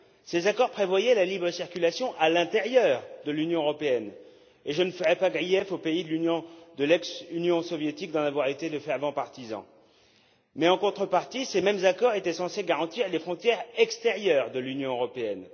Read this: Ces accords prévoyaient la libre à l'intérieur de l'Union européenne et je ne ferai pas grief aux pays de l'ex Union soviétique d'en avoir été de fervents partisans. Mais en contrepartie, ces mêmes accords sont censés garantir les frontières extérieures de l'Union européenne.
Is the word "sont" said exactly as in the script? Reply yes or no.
no